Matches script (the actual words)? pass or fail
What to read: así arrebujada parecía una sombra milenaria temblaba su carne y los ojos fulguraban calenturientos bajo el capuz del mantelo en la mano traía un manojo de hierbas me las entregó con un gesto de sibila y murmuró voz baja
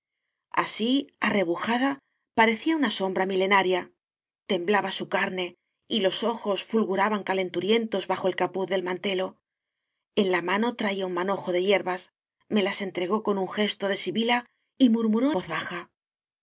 pass